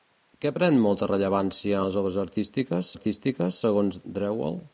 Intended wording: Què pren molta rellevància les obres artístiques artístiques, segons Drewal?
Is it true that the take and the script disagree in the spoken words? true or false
false